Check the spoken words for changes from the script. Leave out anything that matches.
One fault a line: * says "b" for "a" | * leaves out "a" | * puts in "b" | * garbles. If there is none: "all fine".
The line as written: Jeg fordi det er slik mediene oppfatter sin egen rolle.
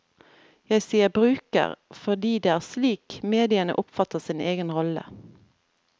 * puts in "sier bruker"